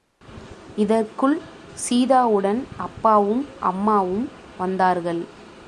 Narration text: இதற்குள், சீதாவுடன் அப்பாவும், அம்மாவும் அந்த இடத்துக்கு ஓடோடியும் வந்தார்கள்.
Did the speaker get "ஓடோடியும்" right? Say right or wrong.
wrong